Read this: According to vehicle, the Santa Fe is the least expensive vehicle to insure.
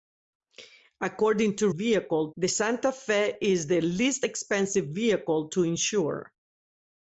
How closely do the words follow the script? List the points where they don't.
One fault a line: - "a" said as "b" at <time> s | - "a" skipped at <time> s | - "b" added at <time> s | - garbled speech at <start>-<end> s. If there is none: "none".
none